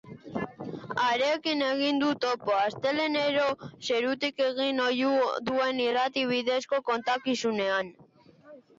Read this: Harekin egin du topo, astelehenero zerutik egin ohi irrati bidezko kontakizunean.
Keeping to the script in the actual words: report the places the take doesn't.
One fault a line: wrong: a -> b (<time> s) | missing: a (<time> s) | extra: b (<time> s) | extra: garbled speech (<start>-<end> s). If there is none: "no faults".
extra: duen (5.5 s)